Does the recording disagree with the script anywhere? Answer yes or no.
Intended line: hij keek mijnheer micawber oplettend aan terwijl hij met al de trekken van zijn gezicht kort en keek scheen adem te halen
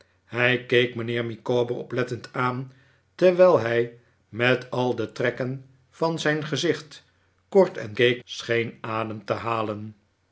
no